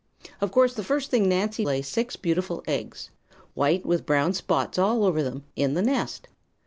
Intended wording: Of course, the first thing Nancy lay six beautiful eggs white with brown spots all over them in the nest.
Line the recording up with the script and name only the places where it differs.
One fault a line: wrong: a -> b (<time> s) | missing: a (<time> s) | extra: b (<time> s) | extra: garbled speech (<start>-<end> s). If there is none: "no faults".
no faults